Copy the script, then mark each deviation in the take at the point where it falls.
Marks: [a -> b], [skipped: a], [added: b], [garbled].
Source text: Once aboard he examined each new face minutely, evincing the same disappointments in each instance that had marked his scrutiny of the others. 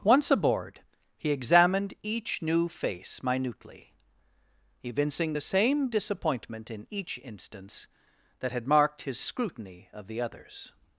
Once aboard he examined each new face minutely, evincing the same [disappointments -> disappointment] in each instance that had marked his scrutiny of the others.